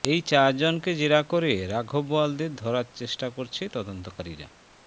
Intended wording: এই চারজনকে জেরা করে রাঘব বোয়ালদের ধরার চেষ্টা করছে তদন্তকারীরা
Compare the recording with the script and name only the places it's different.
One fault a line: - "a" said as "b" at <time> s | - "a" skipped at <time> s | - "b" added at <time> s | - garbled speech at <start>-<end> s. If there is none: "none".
none